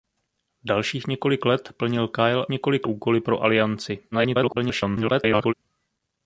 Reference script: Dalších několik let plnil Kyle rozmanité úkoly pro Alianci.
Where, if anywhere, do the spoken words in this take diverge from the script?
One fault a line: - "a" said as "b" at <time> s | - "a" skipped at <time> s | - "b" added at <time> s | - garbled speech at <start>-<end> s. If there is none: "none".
- "rozmanité" said as "několik" at 2.5 s
- garbled speech at 4.1-5.5 s